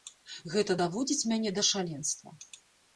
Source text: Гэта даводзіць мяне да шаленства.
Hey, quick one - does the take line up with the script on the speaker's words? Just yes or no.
yes